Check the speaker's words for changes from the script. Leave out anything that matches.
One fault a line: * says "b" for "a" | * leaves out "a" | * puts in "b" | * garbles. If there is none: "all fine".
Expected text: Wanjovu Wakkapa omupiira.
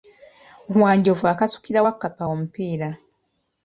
* puts in "akasukira"